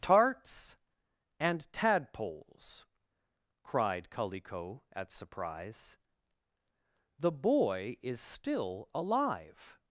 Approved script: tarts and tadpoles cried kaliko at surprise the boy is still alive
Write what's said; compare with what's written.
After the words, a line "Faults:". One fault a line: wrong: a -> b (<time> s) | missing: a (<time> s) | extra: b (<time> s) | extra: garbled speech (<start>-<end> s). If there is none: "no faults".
tarts and tadpoles cried kaliko at surprise the boy is still alive
Faults:
no faults